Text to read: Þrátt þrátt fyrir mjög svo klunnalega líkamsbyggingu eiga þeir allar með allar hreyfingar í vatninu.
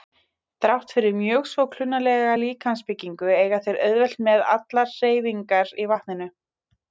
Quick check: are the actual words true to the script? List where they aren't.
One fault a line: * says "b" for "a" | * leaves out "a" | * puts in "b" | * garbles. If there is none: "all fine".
* leaves out "þrátt"
* says "auðvelt" for "allar"